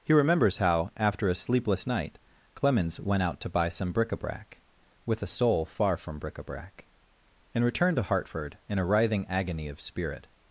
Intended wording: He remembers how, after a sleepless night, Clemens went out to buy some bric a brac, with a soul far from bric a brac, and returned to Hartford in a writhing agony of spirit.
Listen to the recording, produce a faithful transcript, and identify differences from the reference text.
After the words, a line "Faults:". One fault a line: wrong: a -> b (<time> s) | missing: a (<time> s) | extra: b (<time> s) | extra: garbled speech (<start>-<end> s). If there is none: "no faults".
He remembers how, after a sleepless night, Clemens went out to buy some bric a brac, with a soul far from bric a brac, and returned to Hartford in a writhing agony of spirit.
Faults:
no faults